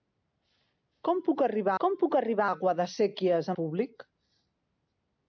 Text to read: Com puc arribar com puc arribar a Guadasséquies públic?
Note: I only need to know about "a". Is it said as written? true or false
true